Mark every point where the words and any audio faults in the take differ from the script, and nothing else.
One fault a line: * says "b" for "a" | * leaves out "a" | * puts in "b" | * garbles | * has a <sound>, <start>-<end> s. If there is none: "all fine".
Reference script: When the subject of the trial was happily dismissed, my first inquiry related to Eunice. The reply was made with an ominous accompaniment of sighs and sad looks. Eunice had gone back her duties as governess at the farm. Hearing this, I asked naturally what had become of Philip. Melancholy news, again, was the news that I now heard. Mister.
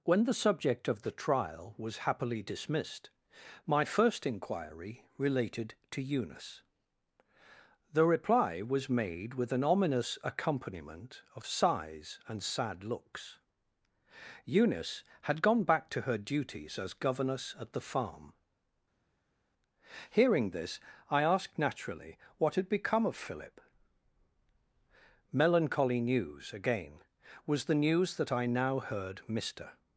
* puts in "to"